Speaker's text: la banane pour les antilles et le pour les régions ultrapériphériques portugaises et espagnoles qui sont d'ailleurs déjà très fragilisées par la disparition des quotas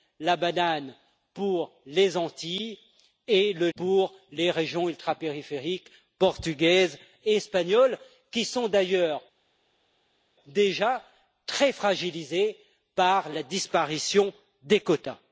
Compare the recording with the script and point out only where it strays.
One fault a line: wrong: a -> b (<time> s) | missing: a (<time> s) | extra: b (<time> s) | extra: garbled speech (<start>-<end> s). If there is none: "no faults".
no faults